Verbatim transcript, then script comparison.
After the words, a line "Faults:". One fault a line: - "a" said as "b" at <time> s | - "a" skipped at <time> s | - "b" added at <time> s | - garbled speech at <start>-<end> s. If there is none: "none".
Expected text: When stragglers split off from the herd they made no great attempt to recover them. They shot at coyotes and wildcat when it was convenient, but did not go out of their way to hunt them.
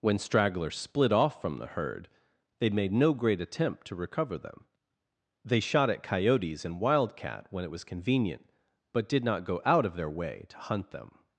When stragglers split off from the herd they made no great attempt to recover them. They shot at coyotes and wildcat when it was convenient, but did not go out of their way to hunt them.
Faults:
none